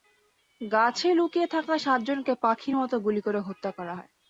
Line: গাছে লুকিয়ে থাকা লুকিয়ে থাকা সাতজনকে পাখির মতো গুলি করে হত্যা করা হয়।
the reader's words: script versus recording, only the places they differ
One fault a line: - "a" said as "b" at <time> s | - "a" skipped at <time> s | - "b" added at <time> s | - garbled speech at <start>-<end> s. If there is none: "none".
- "লুকিয়ে থাকা" skipped at 1.7 s